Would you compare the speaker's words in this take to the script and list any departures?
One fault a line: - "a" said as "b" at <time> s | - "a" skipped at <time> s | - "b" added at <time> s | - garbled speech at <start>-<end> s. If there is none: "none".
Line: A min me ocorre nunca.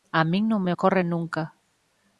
- "non" added at 0.5 s